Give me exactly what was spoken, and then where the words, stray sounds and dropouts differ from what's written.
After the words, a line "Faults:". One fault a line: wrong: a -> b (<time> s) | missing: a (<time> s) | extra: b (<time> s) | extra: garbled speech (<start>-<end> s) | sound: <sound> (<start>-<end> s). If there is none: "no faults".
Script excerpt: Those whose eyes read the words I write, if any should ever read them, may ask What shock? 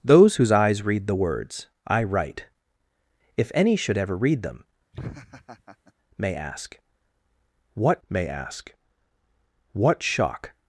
Those whose eyes read the words I write, if any should ever read them, may ask What may ask What shock?
Faults:
sound: laugh (4.9-5.9 s)
extra: may ask What (8.1 s)